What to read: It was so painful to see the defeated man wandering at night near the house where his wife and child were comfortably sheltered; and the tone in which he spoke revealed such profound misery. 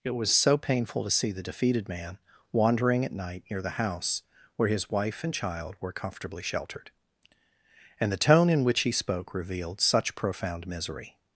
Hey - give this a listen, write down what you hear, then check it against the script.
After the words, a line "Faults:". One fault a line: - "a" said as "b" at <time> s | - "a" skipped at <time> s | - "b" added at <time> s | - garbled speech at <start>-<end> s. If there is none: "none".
It was so painful to see the defeated man wandering at night near the house where his wife and child were comfortably sheltered; and the tone in which he spoke revealed such profound misery.
Faults:
none